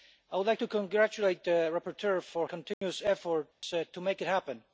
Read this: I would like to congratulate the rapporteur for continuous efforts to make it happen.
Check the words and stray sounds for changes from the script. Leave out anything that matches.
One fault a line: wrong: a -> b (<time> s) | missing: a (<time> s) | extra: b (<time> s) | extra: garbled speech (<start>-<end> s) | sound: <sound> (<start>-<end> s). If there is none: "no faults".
sound: dropout (2.7-2.8 s)
sound: dropout (3.5-3.6 s)